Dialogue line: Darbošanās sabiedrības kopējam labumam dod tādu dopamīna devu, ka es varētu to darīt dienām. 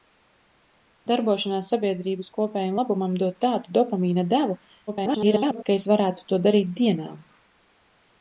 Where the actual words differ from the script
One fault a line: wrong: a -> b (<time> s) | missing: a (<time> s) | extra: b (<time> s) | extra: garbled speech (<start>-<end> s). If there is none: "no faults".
extra: garbled speech (4.9-5.6 s)